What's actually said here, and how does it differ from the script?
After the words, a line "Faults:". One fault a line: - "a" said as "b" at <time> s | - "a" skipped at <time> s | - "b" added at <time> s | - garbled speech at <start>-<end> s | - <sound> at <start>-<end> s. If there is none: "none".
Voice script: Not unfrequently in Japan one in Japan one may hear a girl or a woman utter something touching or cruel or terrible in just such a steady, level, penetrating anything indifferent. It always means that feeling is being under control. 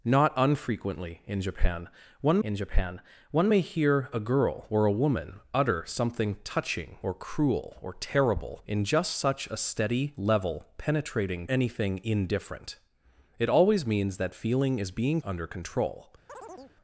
Not unfrequently in Japan one in Japan one may hear a girl or a woman utter something touching or cruel or terrible in just such a steady, level, penetrating anything indifferent. It always means that feeling is being under control.
Faults:
- chirp at 16.3-16.8 s